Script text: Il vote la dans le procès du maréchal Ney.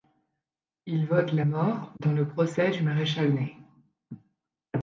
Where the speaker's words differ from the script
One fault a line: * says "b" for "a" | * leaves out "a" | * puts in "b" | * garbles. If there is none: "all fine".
* puts in "mort"